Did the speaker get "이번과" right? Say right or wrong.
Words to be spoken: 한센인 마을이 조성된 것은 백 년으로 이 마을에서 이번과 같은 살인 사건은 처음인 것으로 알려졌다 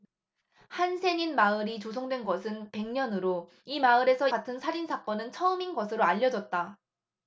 wrong